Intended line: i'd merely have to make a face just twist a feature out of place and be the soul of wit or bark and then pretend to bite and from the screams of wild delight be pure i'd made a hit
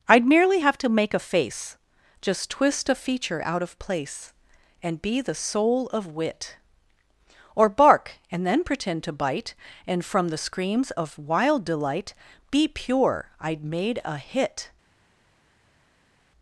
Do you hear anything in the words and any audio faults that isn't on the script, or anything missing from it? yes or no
no